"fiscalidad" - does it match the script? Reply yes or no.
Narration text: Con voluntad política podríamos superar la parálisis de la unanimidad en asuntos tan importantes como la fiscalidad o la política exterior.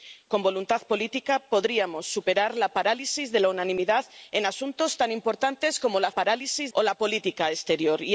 no